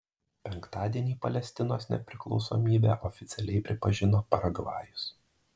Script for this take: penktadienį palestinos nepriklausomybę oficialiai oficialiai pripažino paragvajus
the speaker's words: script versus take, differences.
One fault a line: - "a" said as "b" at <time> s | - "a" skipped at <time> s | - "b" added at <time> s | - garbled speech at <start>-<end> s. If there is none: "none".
- "oficialiai" skipped at 3.6 s